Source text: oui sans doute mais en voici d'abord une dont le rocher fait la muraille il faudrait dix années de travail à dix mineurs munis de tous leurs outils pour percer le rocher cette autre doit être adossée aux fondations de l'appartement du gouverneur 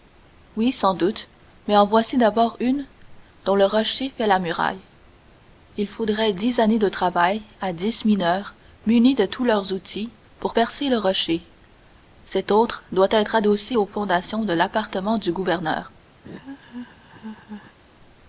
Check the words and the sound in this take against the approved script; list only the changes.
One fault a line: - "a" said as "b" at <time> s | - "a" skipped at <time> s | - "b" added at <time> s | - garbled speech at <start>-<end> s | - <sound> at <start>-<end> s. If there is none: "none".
- laugh at 16.2-17.8 s